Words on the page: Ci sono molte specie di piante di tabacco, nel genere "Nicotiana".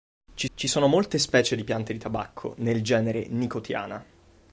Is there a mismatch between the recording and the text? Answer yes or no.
yes